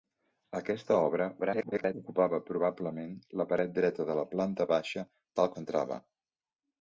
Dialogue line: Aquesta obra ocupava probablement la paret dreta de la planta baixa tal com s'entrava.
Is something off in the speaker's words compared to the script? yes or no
yes